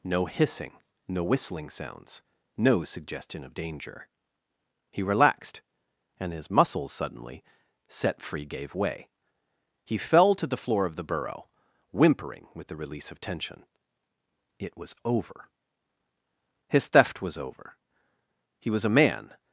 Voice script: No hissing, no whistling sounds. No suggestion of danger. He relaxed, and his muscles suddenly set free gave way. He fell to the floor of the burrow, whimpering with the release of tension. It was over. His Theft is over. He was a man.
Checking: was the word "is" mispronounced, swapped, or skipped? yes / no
yes